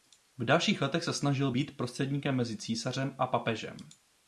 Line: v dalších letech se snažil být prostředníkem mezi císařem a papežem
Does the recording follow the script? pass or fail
pass